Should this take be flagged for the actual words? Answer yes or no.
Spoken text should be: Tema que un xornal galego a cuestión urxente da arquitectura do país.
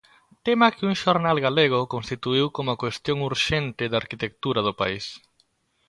yes